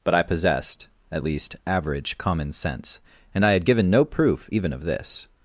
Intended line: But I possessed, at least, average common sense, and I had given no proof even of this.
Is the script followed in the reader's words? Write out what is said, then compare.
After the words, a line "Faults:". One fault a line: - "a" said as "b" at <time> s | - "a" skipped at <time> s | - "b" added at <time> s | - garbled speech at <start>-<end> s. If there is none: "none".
But I possessed, at least, average common sense, and I had given no proof even of this.
Faults:
none